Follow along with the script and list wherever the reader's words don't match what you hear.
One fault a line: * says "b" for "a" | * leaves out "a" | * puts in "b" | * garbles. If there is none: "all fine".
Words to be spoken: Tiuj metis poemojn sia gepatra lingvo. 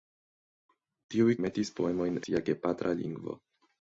all fine